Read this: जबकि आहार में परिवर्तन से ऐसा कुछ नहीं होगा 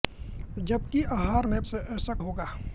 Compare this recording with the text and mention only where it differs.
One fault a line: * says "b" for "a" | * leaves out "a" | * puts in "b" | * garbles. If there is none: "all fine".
* leaves out "परिवर्तन"
* leaves out "कुछ नहीं"